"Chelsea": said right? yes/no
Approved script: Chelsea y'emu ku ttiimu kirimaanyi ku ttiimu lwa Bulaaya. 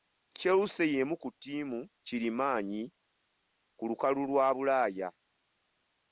yes